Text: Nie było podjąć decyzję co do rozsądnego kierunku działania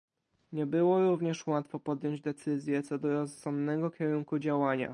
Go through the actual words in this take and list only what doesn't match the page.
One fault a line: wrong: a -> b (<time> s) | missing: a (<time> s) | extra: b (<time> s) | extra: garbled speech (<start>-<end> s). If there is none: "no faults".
extra: również łatwo (1.1 s)